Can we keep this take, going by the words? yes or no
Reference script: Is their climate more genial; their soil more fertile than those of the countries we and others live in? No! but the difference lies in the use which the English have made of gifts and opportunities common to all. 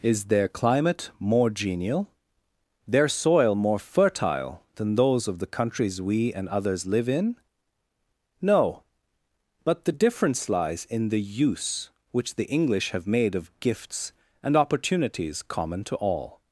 yes